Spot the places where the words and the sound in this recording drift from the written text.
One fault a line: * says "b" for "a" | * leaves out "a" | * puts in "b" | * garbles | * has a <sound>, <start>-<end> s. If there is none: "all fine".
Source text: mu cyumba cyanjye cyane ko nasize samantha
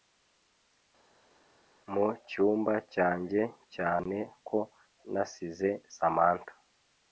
all fine